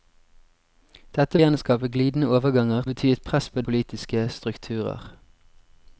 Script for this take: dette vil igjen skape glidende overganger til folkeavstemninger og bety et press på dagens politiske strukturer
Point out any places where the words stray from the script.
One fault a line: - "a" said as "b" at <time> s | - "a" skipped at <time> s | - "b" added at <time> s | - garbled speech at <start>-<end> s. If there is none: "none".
- "vil" skipped at 1.4 s
- "til folkeavstemninger og" skipped at 2.8 s
- "dagens" skipped at 3.6 s